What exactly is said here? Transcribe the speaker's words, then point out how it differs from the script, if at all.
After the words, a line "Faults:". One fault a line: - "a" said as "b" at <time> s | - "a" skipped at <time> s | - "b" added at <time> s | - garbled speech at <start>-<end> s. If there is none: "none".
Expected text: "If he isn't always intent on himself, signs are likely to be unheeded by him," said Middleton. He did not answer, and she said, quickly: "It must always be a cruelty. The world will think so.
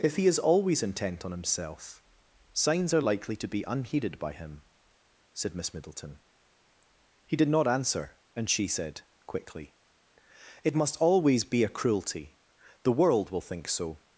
"If he is always intent on himself, signs are likely to be unheeded by him," said Miss Middleton. He did not answer, and she said, quickly: "It must always be a cruelty. The world will think so.
Faults:
- "isn't" said as "is" at 0.2 s
- "Miss" added at 5.5 s